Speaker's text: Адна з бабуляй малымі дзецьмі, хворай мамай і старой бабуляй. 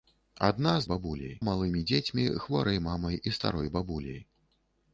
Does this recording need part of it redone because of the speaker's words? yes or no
no